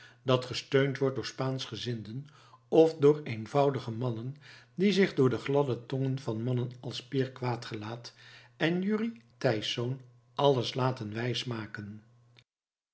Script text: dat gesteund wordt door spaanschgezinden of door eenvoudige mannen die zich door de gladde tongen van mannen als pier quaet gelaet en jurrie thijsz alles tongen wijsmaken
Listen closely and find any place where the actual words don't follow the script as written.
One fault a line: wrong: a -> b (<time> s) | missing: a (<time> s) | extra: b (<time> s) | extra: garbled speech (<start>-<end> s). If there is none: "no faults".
wrong: tongen -> laten (10.7 s)